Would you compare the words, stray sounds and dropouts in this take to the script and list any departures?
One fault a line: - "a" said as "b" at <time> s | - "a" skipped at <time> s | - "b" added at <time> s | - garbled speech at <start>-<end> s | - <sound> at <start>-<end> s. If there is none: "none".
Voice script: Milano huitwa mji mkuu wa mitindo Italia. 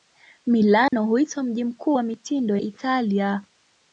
- dropout at 0.9-0.9 s